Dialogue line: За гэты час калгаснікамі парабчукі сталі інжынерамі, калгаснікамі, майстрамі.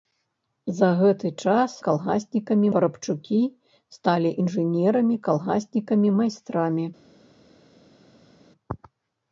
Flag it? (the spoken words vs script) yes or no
no